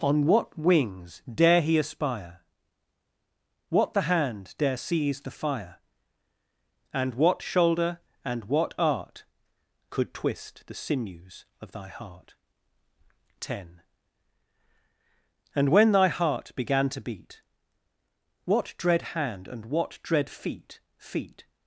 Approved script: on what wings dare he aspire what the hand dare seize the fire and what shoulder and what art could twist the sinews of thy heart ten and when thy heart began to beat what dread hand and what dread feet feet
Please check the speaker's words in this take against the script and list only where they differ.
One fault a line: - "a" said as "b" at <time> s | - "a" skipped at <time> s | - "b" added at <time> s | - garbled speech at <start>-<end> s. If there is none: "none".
none